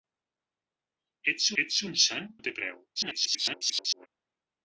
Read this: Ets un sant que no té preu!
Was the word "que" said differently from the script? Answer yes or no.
yes